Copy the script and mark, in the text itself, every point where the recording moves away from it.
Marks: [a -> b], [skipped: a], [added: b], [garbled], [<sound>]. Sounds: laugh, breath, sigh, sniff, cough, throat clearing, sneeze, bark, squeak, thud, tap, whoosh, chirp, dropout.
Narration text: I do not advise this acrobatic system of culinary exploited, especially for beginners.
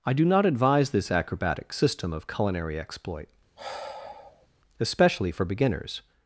I do not advise this acrobatic system of culinary [exploited, -> exploit] [sigh] especially for beginners.